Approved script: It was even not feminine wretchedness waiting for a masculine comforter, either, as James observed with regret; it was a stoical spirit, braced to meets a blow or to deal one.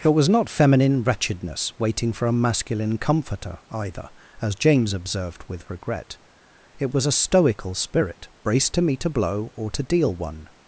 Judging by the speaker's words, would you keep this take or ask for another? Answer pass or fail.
fail